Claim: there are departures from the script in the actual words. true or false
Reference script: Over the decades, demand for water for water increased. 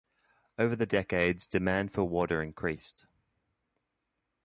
true